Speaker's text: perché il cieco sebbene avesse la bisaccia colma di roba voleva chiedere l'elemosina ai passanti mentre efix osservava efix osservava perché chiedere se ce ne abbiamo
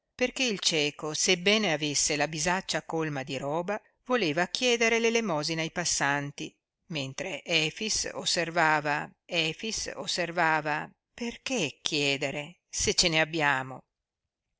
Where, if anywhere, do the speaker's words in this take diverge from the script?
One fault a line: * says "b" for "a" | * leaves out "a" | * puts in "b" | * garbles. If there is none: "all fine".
all fine